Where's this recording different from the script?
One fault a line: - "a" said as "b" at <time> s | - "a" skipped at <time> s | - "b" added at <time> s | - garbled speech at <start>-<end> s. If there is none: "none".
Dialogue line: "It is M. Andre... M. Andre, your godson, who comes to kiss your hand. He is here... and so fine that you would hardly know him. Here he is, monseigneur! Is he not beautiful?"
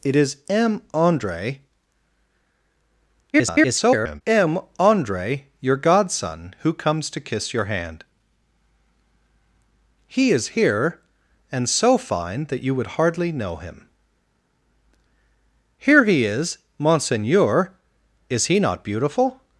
- garbled speech at 3.3-4.2 s